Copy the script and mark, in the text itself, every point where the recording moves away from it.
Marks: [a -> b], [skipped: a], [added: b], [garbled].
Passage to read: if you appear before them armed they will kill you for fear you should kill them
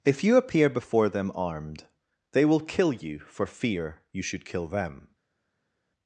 if you appear before them armed they will kill you for fear you should kill them